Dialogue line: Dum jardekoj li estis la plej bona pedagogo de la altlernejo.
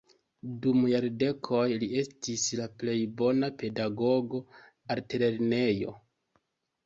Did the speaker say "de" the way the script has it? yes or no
no